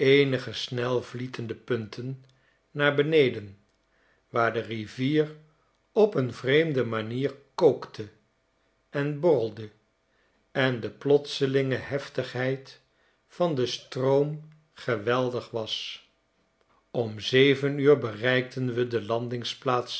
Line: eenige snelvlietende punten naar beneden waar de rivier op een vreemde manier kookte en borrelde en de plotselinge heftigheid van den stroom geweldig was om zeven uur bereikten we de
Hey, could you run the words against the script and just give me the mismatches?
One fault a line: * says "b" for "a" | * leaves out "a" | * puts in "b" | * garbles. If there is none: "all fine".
all fine